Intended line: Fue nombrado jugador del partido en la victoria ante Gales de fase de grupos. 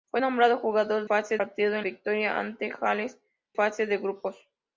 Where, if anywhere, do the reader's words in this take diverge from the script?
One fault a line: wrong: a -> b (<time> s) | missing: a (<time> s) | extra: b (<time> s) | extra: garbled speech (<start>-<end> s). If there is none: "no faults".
wrong: del -> fase (1.0 s)
missing: la (1.9 s)
missing: de (3.2 s)